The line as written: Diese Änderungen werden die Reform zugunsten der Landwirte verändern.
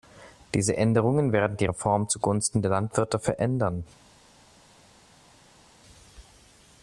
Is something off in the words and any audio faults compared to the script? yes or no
no